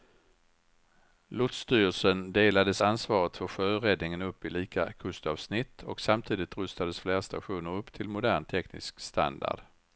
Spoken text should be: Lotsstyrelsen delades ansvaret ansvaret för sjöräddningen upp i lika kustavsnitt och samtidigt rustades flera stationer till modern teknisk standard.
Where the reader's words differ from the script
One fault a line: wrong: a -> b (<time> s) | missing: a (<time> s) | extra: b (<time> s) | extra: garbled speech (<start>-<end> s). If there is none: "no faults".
missing: ansvaret (3.4 s)
extra: upp (7.7 s)